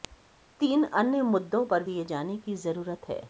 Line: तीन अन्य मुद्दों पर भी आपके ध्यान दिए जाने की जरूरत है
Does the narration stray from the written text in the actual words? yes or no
yes